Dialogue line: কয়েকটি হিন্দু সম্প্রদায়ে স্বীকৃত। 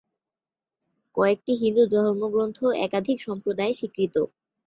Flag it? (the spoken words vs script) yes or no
yes